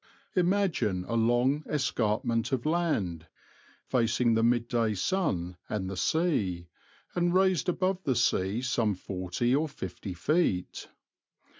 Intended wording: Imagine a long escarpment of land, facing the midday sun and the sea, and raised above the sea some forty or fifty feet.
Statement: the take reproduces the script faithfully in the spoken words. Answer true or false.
true